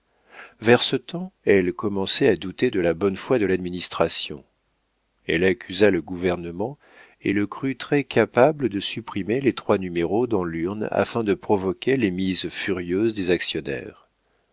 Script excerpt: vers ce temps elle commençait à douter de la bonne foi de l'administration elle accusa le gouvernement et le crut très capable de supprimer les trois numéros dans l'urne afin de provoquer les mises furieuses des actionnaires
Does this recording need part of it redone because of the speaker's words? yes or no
no